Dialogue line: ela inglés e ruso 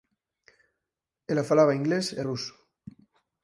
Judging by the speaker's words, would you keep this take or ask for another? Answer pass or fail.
fail